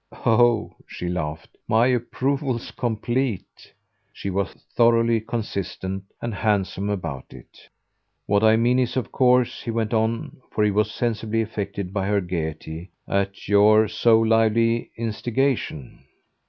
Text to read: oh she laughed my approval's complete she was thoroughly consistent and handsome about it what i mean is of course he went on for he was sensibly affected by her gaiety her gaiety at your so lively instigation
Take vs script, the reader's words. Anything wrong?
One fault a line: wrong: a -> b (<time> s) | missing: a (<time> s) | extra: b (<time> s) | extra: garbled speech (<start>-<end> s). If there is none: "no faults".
missing: her gaiety (12.9 s)